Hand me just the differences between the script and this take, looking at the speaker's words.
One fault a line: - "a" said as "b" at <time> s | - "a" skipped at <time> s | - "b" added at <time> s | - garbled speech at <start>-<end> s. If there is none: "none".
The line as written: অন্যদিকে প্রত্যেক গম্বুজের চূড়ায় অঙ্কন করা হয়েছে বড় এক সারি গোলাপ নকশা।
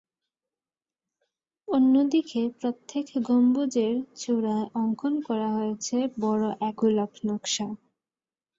- "সারি" skipped at 6.8 s